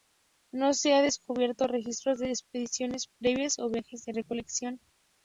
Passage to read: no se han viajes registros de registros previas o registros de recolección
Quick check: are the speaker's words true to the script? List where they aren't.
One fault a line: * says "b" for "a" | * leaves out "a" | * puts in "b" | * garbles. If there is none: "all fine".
* says "descubierto" for "viajes"
* says "expediciones" for "registros"
* says "viajes" for "registros"